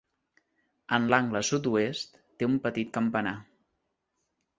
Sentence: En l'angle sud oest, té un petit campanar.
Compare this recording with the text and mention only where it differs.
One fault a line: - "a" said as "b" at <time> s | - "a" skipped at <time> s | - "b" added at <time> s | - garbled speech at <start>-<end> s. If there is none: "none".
none